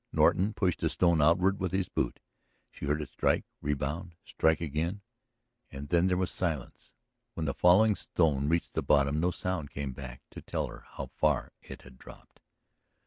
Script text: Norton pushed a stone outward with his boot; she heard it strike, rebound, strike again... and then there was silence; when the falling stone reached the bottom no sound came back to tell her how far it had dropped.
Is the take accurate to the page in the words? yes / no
yes